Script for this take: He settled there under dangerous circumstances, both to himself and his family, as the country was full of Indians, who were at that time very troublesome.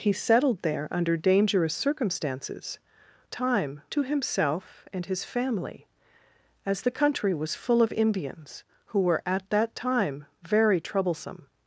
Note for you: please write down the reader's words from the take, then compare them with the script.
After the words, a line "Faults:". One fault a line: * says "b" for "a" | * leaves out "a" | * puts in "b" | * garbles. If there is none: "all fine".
He settled there under dangerous circumstances, time to himself and his family, as the country was full of Indians, who were at that time very troublesome.
Faults:
* says "time" for "both"